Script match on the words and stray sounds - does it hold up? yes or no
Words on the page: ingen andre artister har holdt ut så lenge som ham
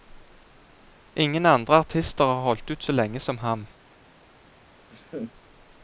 no